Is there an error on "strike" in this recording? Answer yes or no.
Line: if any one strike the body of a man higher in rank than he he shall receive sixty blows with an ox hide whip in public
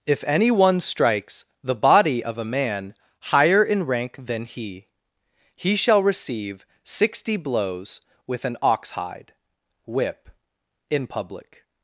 yes